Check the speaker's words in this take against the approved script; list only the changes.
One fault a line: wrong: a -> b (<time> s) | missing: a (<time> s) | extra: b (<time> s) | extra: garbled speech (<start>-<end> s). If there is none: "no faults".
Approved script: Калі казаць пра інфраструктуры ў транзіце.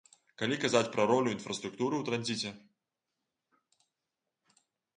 extra: ролю (1.1 s)